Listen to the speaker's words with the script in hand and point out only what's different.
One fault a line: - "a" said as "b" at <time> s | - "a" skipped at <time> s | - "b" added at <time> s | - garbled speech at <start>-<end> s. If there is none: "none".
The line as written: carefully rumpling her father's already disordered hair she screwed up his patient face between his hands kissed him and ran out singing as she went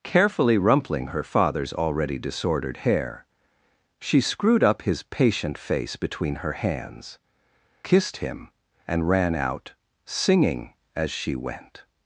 - "his" said as "her" at 6.4 s